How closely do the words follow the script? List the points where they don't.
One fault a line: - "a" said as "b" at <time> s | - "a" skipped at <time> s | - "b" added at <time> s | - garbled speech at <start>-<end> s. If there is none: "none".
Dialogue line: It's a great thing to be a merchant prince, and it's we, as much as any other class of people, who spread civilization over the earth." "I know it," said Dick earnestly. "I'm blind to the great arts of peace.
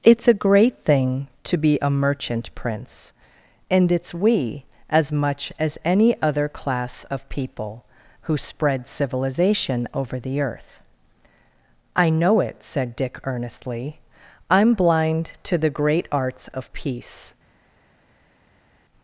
none